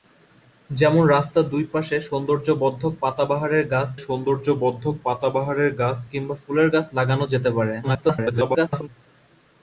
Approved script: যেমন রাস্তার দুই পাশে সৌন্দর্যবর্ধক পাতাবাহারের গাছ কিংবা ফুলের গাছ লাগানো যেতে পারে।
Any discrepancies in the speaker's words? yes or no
yes